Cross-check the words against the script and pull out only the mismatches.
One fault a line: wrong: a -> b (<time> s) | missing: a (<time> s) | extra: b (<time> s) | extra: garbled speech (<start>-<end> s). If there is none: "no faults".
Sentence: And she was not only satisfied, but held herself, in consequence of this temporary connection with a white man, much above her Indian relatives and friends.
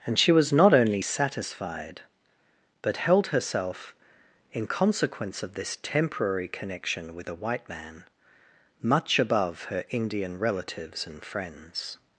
no faults